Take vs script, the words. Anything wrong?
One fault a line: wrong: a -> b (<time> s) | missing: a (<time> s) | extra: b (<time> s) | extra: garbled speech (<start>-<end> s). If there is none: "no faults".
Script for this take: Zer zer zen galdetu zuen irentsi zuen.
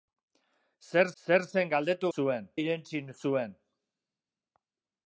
no faults